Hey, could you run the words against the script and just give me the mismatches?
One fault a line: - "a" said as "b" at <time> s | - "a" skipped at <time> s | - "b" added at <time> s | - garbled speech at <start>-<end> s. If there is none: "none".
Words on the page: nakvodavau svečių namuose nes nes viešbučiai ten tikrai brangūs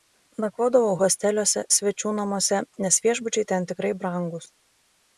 - "hosteliuose" added at 1.0 s
- "nes" skipped at 3.0 s